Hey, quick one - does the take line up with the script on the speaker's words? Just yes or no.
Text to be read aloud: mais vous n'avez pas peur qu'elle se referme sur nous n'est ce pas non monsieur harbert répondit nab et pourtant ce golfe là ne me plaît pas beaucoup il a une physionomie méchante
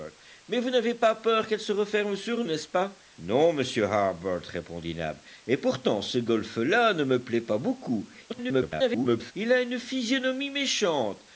no